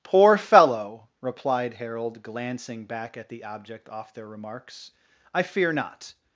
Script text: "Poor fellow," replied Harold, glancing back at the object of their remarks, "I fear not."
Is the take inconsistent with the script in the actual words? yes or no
yes